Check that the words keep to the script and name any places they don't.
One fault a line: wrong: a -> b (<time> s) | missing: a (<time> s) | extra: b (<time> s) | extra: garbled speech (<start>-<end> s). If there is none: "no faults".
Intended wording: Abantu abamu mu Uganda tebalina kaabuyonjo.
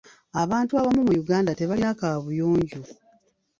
no faults